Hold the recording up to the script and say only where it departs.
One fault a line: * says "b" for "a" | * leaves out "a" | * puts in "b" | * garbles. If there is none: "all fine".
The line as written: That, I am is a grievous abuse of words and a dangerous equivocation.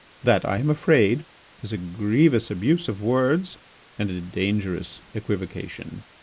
* puts in "afraid"